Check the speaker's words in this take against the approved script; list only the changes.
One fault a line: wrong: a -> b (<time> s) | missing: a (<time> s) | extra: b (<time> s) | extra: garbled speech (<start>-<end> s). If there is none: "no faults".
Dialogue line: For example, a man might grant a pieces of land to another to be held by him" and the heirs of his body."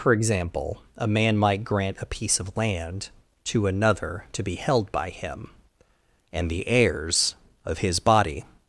wrong: pieces -> piece (2.1 s)